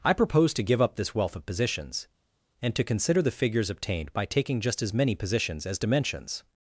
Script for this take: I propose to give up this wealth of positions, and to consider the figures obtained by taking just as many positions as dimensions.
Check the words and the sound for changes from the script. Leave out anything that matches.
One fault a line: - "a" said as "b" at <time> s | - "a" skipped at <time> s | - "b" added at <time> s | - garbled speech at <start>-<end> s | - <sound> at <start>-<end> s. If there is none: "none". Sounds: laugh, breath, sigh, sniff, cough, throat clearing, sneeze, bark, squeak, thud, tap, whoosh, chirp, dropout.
none